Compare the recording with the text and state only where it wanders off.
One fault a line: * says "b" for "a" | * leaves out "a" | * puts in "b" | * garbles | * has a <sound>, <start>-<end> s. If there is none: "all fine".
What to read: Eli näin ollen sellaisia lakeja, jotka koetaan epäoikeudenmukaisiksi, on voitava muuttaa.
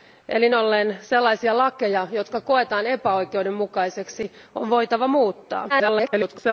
* leaves out "näin"
* garbles